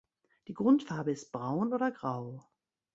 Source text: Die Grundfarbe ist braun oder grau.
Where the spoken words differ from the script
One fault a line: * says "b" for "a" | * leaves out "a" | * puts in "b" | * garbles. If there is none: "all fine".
all fine